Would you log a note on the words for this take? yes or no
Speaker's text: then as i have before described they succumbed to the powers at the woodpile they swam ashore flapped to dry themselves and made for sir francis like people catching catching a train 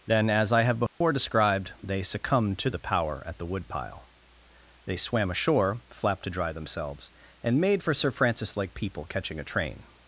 yes